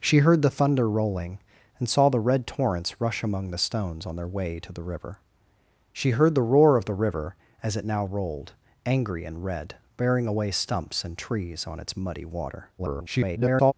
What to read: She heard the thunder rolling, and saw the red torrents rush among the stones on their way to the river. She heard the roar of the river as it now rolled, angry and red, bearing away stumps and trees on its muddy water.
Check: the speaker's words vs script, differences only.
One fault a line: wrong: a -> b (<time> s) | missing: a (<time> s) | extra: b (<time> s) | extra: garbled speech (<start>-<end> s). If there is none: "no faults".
extra: garbled speech (12.8-13.7 s)